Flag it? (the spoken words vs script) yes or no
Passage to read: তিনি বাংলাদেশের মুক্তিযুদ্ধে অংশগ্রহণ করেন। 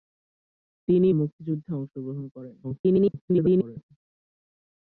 yes